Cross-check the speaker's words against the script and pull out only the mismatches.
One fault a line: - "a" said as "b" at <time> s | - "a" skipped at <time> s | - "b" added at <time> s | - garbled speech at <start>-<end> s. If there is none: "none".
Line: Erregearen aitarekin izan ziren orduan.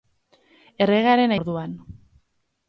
- "aitarekin izan ziren" skipped at 1.4 s